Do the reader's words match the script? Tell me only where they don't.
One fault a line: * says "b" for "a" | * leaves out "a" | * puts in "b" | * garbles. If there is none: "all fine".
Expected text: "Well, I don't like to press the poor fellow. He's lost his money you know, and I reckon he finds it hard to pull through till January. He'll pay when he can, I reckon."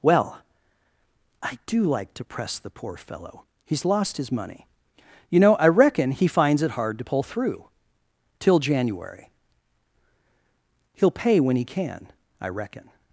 * says "do" for "don't"
* leaves out "and"